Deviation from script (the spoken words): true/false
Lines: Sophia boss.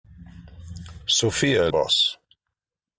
false